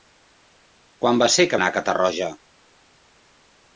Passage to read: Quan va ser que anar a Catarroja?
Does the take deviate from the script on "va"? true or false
false